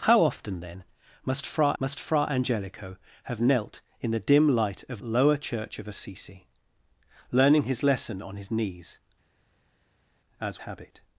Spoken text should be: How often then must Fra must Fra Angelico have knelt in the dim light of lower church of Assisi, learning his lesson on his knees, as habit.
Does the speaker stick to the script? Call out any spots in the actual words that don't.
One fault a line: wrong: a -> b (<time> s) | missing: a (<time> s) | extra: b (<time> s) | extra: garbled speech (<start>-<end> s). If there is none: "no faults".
no faults